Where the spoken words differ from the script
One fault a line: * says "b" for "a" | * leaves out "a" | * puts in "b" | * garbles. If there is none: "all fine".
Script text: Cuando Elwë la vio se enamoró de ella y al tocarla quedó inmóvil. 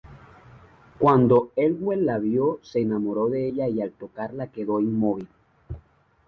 all fine